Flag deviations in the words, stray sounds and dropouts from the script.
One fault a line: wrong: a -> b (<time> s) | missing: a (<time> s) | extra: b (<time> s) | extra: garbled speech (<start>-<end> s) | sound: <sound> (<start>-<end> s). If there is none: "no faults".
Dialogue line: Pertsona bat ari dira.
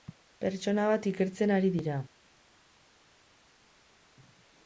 extra: ikertzen (1.1 s)